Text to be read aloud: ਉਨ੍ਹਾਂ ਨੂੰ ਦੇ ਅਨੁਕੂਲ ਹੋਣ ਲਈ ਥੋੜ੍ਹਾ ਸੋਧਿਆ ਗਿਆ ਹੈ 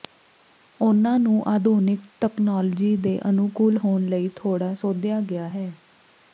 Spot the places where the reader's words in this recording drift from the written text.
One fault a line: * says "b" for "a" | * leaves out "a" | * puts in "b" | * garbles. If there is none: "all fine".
* puts in "ਆਧੁਨਿਕ ਤਕਨਾਲੋਜੀ"